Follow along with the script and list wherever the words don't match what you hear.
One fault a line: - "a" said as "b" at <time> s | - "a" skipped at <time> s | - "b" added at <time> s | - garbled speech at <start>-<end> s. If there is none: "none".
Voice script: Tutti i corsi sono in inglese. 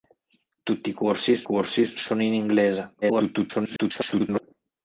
- "corsi" added at 1.4 s
- garbled speech at 3.0-4.4 s